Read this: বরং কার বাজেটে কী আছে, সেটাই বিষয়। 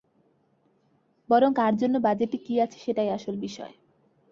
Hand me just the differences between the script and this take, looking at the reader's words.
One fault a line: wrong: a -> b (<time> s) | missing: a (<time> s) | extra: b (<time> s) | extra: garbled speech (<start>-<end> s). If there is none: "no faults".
extra: জন্য (1.8 s)
extra: আসল (3.1 s)